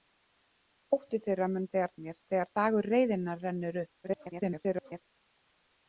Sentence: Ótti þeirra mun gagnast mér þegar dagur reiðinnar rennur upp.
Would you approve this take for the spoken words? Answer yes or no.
no